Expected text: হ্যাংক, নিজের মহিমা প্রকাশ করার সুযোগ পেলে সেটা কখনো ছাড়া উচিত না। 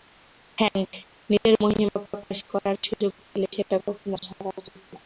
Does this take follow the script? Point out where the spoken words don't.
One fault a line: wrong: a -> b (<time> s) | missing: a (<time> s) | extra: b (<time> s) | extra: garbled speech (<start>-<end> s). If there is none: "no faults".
no faults